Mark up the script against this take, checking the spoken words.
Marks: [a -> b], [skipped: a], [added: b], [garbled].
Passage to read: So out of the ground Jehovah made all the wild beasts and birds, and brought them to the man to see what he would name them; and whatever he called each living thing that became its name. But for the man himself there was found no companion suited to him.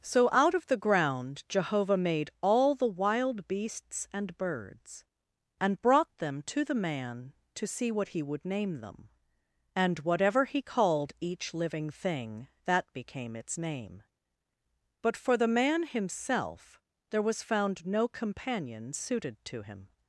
So out of the ground Jehovah made all the wild beasts and birds, and brought them to the man to see what he would name them; and whatever he called each living thing that became its name. But for the man himself there was found no companion suited to him.